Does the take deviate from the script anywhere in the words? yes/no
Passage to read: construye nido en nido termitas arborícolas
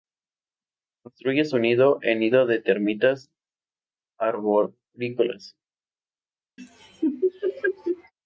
yes